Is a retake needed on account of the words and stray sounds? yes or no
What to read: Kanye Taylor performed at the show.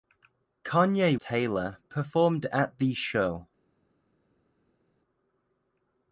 no